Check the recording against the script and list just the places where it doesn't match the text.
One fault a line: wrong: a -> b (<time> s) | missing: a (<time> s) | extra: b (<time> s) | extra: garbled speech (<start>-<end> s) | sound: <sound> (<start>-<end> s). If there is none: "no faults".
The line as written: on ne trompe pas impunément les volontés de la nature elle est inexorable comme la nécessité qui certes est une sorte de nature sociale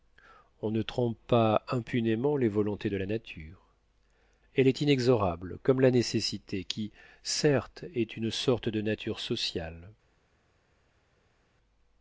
no faults